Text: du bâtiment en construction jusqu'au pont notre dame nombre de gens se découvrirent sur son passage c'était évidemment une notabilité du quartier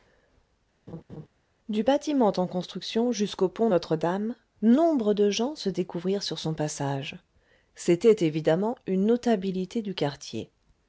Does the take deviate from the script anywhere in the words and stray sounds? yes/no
yes